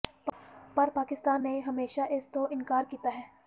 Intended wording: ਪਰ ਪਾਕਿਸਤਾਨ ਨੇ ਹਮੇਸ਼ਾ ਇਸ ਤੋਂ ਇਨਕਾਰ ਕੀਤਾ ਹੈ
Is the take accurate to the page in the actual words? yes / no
yes